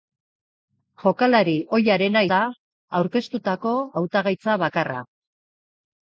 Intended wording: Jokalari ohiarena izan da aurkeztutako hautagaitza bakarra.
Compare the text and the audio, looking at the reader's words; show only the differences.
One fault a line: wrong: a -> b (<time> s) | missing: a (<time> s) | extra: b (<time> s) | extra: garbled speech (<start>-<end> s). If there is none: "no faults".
missing: izan (2.2 s)